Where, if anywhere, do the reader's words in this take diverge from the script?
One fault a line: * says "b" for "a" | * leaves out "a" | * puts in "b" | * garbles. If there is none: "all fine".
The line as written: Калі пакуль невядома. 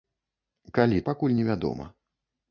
all fine